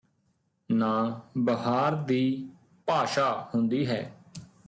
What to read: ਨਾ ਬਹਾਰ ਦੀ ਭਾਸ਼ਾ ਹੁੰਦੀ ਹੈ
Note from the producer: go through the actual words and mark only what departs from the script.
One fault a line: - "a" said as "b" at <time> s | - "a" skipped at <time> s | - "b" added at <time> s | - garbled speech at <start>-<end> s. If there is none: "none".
none